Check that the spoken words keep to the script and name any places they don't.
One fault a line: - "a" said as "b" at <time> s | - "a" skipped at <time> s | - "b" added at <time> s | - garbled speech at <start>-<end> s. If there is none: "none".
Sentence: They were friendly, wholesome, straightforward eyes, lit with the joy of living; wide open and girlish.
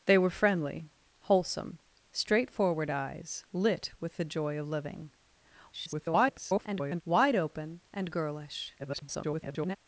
- garbled speech at 5.7-7.0 s
- garbled speech at 8.8-9.8 s